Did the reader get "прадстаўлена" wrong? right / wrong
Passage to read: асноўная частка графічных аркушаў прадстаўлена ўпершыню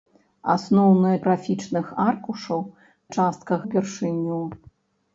wrong